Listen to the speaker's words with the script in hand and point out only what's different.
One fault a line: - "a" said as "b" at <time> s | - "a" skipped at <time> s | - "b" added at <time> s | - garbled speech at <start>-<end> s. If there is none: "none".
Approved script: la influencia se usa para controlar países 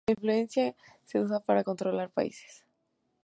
none